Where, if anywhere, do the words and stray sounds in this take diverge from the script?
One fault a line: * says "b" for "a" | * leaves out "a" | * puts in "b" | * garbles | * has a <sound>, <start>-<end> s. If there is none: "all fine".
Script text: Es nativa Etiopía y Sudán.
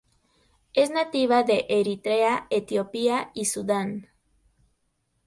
* puts in "de Eritrea"